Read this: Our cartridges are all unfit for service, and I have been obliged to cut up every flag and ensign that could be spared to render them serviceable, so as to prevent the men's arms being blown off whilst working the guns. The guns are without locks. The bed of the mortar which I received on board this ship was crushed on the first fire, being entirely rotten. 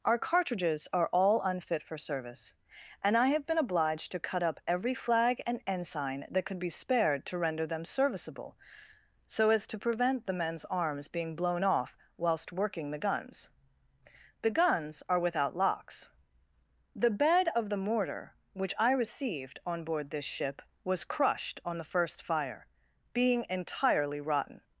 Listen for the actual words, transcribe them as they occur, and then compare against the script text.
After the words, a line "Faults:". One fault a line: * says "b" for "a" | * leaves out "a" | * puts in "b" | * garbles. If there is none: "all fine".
Our cartridges are all unfit for service, and I have been obliged to cut up every flag and ensign that could be spared to render them serviceable, so as to prevent the men's arms being blown off whilst working the guns. The guns are without locks. The bed of the mortar which I received on board this ship was crushed on the first fire, being entirely rotten.
Faults:
all fine